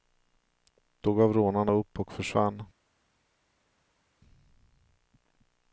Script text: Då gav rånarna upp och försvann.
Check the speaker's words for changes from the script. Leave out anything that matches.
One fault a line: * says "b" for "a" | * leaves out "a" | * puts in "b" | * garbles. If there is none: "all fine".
all fine